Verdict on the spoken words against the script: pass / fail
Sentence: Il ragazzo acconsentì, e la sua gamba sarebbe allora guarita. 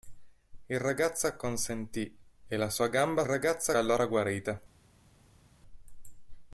fail